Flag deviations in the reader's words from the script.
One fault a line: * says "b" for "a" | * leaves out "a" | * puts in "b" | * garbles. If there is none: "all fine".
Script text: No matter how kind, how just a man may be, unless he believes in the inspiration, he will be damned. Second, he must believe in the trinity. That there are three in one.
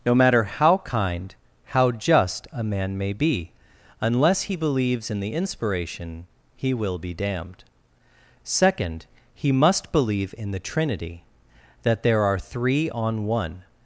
* says "on" for "in"